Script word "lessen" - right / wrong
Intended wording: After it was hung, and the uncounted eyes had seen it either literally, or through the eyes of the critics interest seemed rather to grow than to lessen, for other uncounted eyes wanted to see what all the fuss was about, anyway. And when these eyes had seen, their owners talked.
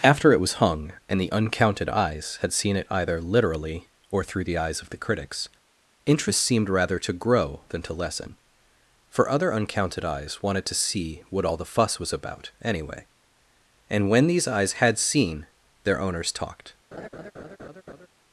right